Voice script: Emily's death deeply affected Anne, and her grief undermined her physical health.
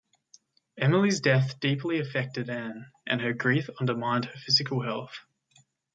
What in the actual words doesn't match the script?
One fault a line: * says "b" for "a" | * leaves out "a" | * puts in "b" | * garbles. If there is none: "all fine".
all fine